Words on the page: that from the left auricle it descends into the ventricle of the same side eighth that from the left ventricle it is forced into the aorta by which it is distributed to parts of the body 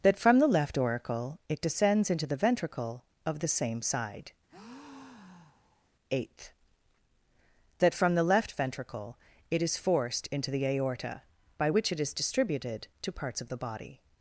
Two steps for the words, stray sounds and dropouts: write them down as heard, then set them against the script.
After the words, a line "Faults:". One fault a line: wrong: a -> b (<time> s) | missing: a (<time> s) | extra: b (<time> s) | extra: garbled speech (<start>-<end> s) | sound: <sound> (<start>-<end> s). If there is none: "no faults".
that from the left auricle it descends into the ventricle of the same side eighth that from the left ventricle it is forced into the aorta by which it is distributed to parts of the body
Faults:
sound: breath (4.5-5.9 s)